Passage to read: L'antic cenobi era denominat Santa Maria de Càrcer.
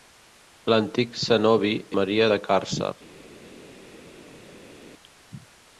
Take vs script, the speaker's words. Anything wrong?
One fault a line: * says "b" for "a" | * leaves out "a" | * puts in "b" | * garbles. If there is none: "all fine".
* leaves out "era denominat Santa"